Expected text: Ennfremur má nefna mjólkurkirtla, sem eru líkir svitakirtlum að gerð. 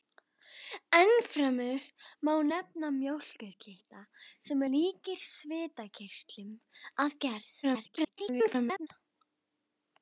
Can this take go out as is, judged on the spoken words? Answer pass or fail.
fail